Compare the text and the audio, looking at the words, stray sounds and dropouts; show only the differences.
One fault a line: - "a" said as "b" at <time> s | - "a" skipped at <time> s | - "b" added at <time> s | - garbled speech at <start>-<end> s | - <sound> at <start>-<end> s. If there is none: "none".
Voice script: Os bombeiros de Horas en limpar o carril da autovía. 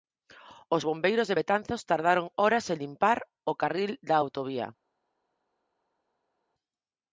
- "Betanzos tardaron" added at 1.4 s